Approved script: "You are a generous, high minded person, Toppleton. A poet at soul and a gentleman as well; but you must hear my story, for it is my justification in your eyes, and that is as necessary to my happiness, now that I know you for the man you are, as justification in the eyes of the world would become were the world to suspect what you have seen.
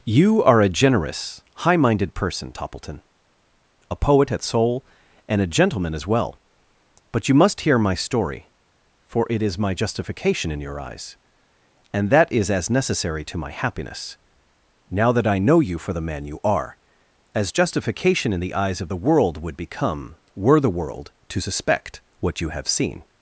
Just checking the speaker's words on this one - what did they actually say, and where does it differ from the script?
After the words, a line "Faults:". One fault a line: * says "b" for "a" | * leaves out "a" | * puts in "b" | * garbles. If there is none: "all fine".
"You are a generous, high minded person, Toppleton. A poet at soul and a gentleman as well; but you must hear my story, for it is my justification in your eyes, and that is as necessary to my happiness, now that I know you for the man you are, as justification in the eyes of the world would become were the world to suspect what you have seen.
Faults:
all fine